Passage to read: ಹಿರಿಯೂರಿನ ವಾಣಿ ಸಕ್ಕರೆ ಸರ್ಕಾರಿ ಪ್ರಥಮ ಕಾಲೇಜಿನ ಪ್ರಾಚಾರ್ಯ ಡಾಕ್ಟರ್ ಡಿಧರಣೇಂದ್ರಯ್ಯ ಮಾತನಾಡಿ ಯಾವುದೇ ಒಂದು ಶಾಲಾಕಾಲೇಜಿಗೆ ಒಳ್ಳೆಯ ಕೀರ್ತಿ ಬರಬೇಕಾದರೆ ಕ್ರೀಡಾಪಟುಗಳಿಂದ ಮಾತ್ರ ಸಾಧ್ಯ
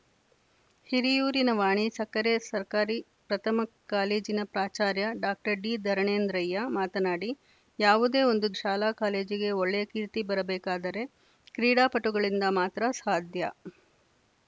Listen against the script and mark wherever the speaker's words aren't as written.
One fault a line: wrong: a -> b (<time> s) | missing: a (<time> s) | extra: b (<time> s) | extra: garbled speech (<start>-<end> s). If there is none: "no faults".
no faults